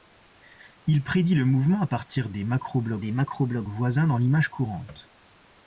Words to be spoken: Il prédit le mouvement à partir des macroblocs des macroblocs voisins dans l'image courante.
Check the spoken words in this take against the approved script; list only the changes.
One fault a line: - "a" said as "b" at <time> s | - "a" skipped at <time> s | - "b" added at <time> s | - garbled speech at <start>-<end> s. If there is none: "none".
none